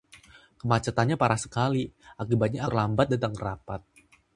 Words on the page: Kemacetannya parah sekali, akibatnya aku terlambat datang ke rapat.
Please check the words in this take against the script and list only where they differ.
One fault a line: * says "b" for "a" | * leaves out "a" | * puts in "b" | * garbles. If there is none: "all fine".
* leaves out "aku"